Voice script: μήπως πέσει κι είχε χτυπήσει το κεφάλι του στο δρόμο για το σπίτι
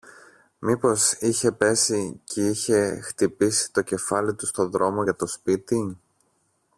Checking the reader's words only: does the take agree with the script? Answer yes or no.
no